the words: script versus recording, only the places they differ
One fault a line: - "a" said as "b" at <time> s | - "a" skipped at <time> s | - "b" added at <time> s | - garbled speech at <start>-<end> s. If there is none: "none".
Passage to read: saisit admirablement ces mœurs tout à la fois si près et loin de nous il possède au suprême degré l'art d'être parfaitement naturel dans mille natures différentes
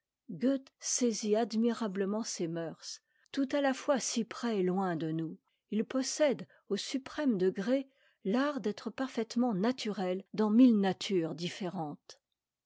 none